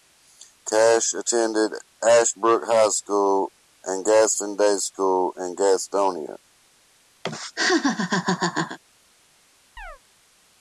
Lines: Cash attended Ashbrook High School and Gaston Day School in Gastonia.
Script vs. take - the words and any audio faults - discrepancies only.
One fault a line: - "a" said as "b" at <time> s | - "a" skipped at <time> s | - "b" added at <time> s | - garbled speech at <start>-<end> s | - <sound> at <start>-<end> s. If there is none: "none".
- laugh at 7.2-8.8 s
- chirp at 9.8-10.0 s